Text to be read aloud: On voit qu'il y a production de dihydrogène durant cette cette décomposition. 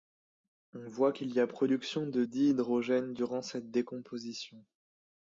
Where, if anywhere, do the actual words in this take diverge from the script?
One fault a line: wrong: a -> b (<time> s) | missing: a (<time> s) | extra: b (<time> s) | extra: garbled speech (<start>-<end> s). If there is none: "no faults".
missing: cette (3.7 s)